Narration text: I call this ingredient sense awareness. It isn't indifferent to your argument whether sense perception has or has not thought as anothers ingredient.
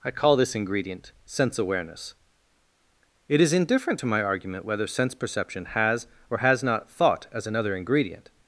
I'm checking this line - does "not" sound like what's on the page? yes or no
yes